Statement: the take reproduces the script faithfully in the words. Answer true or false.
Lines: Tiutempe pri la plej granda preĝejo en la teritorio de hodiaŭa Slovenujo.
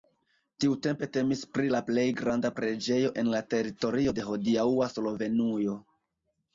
false